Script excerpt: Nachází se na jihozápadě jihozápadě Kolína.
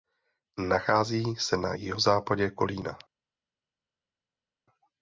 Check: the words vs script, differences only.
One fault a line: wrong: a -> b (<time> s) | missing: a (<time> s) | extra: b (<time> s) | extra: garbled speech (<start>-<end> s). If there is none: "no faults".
missing: jihozápadě (2.5 s)